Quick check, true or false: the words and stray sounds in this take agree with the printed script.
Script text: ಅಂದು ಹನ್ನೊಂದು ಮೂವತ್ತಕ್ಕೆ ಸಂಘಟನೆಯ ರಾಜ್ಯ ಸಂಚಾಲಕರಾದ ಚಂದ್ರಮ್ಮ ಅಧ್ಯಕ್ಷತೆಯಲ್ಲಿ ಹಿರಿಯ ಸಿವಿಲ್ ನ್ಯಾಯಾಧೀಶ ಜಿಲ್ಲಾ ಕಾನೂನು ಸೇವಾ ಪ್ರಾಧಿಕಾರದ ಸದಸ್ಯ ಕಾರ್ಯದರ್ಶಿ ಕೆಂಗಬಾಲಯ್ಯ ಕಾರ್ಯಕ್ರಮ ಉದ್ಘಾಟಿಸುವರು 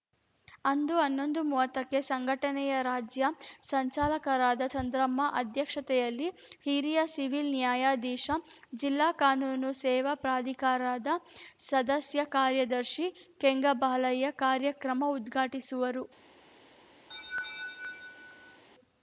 false